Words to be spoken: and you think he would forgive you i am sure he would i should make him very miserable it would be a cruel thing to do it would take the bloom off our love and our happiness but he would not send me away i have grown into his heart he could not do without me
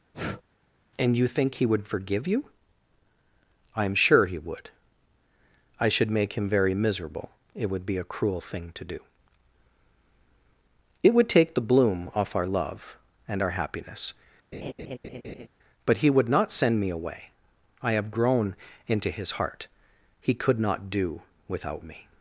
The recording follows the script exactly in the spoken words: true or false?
true